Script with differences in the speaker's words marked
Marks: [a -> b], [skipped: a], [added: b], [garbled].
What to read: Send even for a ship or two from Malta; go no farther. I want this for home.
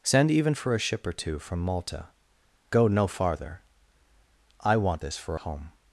Send even for a ship or two from Malta; go no farther. I want this for home.